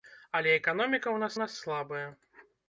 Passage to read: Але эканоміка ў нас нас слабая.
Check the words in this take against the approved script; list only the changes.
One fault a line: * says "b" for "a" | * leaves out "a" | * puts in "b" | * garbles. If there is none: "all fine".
all fine